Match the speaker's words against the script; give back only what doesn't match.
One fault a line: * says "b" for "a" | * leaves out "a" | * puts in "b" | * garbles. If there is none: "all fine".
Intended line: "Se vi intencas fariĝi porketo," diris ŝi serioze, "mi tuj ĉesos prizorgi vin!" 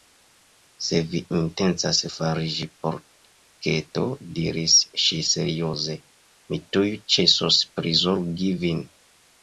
all fine